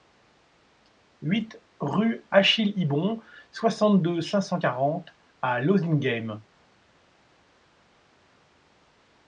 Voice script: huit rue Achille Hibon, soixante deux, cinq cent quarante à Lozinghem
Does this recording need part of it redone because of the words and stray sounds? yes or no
no